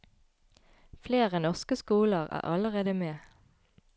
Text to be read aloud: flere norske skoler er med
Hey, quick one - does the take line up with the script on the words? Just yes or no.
no